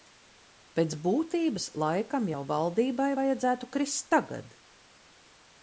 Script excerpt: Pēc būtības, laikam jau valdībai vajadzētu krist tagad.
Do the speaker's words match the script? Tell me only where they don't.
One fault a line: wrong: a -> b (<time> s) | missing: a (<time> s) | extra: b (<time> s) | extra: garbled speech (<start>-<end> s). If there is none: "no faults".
no faults